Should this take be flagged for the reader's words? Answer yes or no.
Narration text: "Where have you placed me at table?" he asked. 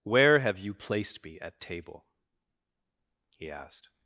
no